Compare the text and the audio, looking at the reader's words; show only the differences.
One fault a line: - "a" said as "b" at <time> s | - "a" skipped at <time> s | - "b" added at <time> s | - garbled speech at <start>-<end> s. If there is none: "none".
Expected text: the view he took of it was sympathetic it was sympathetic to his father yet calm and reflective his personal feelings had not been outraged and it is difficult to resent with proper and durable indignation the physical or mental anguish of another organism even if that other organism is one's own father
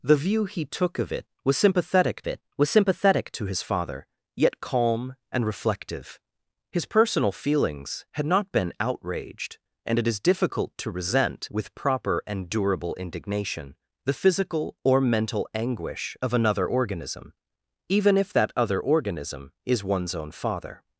none